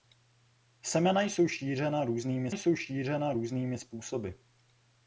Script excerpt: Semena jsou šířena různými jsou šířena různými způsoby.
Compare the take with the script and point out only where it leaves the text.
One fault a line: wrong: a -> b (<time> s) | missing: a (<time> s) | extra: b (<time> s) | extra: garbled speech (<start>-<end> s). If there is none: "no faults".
no faults